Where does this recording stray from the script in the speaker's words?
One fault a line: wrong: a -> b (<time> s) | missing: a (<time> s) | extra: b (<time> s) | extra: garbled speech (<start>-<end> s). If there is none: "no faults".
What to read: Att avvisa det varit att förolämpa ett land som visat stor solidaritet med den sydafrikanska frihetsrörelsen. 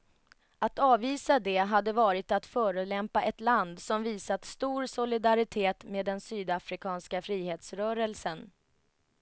extra: hade (1.6 s)